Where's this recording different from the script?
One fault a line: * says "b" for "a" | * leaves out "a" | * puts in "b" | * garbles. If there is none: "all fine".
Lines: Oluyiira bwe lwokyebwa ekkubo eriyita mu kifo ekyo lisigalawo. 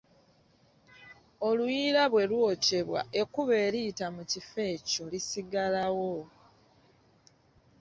all fine